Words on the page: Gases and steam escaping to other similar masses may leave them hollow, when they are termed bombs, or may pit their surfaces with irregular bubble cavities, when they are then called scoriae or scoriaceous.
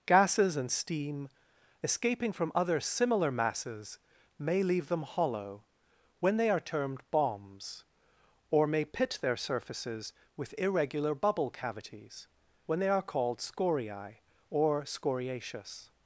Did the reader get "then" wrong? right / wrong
wrong